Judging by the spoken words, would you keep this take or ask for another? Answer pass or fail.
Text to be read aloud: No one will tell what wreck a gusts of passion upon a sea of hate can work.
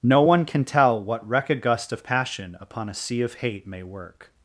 fail